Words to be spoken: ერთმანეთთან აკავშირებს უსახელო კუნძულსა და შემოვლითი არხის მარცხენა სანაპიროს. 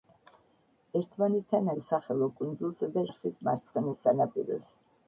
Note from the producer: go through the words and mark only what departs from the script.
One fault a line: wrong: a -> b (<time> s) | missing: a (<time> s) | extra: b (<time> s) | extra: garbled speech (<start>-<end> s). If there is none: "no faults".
missing: აკავშირებს (1.7 s)
missing: შემოვლითი (3.1 s)